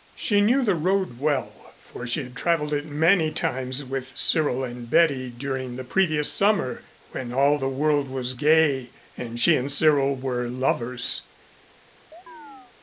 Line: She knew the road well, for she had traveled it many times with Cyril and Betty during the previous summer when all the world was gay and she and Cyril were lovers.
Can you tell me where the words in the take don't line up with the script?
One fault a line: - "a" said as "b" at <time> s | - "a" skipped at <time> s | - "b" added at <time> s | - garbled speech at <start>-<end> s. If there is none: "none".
none